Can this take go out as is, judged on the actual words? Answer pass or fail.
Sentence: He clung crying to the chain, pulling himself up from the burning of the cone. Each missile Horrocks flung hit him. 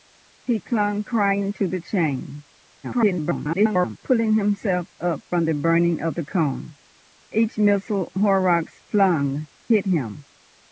fail